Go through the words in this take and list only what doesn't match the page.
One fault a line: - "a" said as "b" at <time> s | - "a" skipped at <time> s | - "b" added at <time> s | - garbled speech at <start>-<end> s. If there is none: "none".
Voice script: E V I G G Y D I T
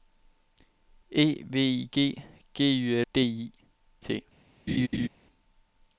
none